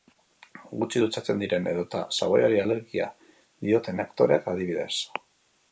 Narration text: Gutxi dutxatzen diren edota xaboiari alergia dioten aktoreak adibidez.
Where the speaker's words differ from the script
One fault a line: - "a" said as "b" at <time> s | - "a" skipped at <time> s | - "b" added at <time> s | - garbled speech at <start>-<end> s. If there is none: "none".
none